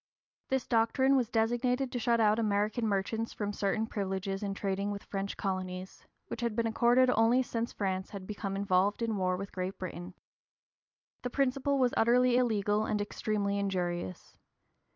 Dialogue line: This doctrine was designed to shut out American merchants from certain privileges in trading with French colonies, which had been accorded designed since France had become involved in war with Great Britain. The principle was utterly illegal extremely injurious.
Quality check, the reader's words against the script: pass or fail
fail